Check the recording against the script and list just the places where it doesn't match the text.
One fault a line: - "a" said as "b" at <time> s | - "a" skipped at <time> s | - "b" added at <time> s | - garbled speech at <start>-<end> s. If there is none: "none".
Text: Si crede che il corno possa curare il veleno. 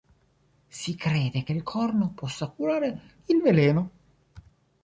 none